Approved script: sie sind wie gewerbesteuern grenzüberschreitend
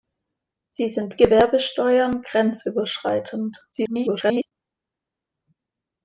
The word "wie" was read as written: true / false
false